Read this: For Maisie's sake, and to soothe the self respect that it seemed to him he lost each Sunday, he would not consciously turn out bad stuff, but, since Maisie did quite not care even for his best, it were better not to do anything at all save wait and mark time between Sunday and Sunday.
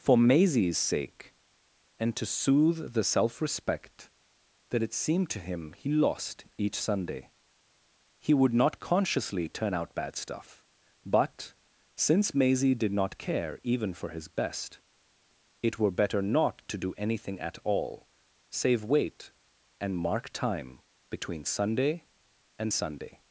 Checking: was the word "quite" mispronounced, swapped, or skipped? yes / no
yes